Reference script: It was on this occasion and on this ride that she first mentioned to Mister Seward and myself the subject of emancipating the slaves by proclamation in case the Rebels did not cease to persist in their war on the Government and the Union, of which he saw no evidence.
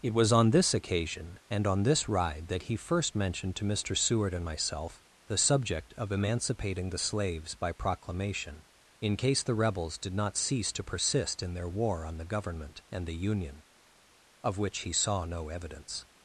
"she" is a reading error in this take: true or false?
true